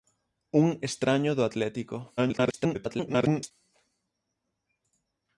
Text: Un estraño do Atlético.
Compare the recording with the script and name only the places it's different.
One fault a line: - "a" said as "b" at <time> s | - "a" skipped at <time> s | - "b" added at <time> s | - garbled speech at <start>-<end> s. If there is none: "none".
- garbled speech at 2.2-3.5 s